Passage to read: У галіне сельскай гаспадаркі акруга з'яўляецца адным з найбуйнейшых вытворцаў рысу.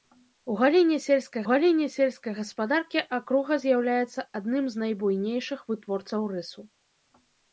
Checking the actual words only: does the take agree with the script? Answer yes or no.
no